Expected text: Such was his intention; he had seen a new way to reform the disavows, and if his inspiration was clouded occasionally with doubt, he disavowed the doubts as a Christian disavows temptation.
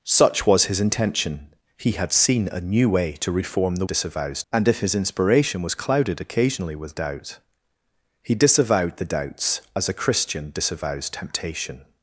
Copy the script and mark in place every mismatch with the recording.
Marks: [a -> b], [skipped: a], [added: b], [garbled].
Such was his intention; he had seen a new way to reform the disavows, and if his inspiration was clouded occasionally with doubt, he disavowed the doubts as a Christian disavows temptation.